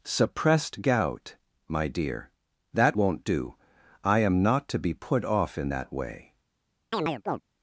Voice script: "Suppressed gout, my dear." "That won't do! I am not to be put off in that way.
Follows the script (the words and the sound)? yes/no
no